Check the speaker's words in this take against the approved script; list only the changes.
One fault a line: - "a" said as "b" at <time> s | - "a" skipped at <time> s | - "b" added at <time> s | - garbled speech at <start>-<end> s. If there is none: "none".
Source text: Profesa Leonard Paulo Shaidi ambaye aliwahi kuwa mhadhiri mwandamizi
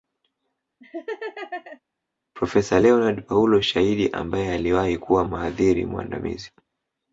none